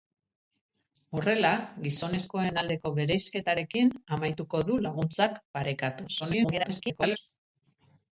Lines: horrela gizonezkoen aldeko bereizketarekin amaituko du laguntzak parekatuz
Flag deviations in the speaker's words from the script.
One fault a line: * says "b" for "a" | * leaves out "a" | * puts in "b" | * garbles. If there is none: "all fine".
* garbles